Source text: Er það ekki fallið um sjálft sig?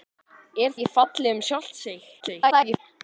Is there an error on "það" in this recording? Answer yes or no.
yes